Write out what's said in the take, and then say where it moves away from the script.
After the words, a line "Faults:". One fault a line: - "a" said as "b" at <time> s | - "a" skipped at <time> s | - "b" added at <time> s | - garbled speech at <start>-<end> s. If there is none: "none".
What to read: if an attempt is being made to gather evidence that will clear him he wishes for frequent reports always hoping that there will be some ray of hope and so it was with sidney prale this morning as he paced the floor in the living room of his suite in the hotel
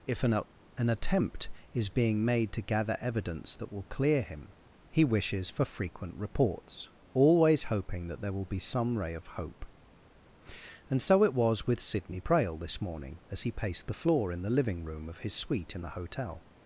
if an an attempt is being made to gather evidence that will clear him he wishes for frequent reports always hoping that there will be some ray of hope and so it was with sidney prale this morning as he paced the floor in the living room of his suite in the hotel
Faults:
- "an" added at 0.8 s